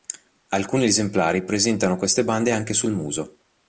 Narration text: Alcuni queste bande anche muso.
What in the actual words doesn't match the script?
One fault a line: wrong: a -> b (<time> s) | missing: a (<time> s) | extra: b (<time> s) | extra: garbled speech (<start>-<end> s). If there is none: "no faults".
extra: esemplari presentano (0.8 s)
extra: sul (2.7 s)